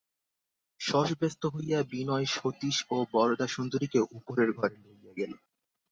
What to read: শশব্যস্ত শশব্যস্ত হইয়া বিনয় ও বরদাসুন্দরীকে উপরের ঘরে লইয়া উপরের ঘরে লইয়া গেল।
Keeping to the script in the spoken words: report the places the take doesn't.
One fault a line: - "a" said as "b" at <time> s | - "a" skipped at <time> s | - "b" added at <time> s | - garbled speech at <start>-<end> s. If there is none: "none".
- "শশব্যস্ত" skipped at 1.4 s
- "সতীশ" added at 2.3 s
- "উপরের ঘরে লইয়া" skipped at 5.1 s